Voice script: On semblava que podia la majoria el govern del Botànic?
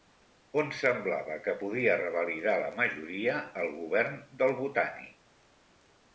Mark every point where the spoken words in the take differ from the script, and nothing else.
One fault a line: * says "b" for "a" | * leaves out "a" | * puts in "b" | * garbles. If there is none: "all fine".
* puts in "revalidar"